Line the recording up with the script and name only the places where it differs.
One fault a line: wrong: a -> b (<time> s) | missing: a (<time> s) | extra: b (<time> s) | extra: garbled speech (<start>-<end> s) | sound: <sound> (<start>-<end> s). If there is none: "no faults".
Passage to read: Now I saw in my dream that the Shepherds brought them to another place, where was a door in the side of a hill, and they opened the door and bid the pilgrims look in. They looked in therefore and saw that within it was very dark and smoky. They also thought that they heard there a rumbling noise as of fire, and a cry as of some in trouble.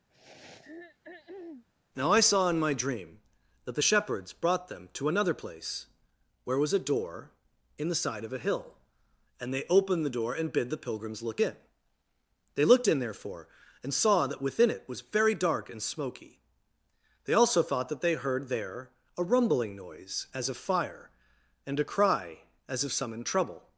sound: throat clearing (0.1-1.7 s)